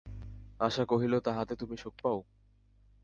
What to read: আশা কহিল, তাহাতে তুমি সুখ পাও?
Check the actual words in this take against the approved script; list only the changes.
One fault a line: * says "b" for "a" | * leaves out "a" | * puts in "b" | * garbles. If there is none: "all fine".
all fine